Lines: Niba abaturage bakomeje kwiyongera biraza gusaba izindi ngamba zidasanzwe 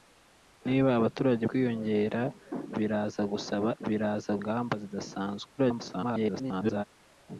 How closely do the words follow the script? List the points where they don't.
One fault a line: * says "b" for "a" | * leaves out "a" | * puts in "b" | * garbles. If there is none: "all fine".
* leaves out "bakomeje"
* says "biraza" for "izindi"
* garbles